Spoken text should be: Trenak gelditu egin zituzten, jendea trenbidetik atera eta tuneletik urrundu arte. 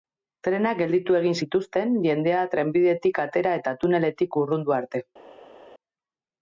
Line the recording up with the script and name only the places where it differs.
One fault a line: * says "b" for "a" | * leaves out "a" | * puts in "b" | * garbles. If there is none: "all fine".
all fine